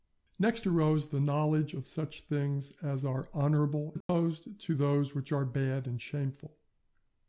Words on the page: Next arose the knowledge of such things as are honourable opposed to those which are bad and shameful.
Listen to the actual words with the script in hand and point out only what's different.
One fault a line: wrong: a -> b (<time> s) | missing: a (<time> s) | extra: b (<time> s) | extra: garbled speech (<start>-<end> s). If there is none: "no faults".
no faults